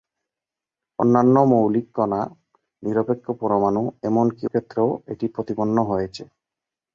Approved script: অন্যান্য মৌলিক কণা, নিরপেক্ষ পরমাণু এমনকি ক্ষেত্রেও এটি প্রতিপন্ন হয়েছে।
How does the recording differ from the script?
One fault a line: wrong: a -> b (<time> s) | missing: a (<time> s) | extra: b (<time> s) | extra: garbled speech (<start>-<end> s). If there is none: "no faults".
no faults